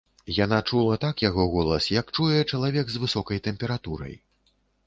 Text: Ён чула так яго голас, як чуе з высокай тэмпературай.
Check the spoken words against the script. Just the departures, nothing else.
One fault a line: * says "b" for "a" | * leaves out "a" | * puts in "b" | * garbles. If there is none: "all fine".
* says "Яна" for "Ён"
* puts in "чалавек"